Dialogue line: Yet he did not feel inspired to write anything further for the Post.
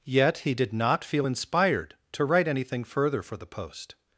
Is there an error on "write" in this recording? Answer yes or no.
no